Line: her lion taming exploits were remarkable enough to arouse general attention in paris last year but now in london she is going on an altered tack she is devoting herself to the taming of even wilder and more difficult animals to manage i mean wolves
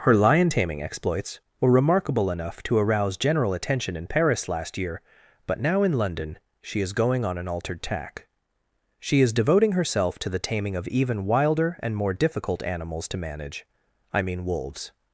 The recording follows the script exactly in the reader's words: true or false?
true